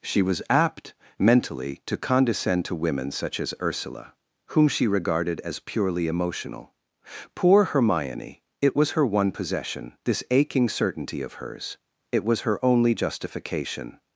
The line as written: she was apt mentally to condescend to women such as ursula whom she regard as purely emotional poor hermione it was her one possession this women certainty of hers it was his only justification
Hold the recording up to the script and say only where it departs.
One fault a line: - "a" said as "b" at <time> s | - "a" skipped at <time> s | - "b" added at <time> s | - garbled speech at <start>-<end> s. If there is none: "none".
- "regard" said as "regarded" at 4.9 s
- "women" said as "aching" at 10.3 s
- "his" said as "her" at 12.4 s